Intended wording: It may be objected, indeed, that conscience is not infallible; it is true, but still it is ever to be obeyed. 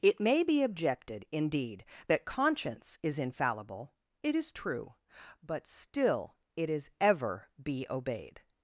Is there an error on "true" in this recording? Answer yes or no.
no